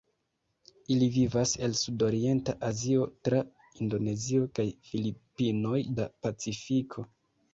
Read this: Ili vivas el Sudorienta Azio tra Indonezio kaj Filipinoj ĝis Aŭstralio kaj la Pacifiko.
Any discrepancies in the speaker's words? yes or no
yes